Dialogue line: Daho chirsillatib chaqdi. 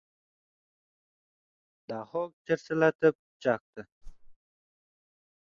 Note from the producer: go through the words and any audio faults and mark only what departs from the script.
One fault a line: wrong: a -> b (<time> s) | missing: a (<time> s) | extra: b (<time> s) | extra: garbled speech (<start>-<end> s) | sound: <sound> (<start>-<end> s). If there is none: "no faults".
sound: whoosh (4.0-4.4 s)